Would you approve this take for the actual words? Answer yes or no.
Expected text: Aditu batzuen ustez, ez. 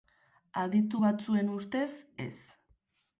yes